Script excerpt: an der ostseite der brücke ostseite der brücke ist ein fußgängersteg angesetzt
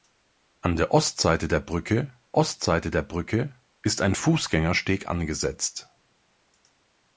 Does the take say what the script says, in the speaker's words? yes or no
yes